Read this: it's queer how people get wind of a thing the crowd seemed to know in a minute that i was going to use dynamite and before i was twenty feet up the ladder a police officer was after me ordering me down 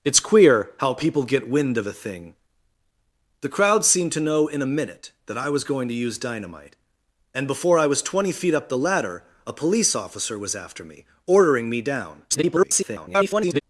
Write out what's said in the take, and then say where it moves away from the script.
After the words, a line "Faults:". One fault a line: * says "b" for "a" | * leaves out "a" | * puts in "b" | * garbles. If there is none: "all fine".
it's queer how people get wind of a thing the crowd seemed to know in a minute that i was going to use dynamite and before i was twenty feet up the ladder a police officer was after me ordering me down [garbled]
Faults:
* garbles